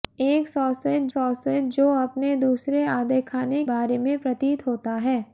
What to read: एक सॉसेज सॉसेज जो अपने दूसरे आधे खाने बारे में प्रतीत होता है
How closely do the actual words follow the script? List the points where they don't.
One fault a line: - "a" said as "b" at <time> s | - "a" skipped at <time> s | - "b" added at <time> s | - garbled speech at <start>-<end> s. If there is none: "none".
none